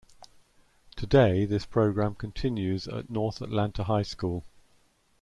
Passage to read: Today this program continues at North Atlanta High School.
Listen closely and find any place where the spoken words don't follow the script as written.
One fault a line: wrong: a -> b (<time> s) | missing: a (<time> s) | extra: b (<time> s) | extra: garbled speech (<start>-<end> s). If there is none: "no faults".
no faults